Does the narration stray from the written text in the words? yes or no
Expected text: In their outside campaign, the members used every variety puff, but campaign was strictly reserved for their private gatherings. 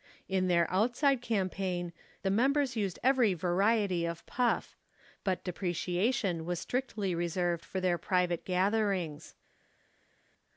yes